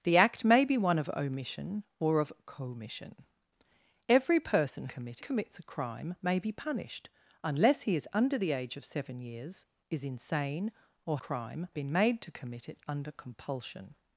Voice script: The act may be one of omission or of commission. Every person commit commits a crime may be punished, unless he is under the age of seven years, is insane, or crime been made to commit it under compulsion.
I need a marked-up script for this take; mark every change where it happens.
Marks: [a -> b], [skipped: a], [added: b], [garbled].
The act may be one of omission or of commission. Every person commit commits a crime may be punished, unless he is under the age of seven years, is insane, or crime been made to commit it under compulsion.